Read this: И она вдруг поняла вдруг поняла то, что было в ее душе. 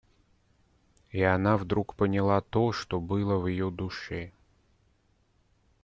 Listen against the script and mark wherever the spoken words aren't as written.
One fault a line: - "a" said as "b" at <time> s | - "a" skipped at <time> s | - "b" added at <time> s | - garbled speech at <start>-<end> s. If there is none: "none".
- "вдруг поняла" skipped at 2.4 s